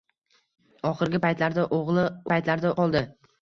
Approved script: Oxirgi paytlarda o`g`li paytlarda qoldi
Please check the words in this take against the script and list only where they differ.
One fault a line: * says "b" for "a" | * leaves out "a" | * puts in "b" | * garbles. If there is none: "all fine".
all fine